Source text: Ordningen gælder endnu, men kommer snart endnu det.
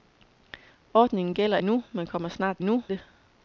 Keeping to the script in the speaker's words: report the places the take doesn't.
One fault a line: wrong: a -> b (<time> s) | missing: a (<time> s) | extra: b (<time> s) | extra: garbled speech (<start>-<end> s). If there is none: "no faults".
no faults